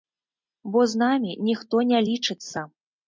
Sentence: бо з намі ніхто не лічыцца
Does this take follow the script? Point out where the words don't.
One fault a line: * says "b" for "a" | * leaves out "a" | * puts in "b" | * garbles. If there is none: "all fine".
all fine